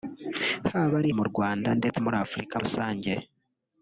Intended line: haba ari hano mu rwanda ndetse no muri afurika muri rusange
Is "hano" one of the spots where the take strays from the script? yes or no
yes